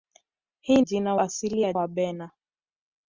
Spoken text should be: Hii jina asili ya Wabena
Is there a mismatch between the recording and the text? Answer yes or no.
no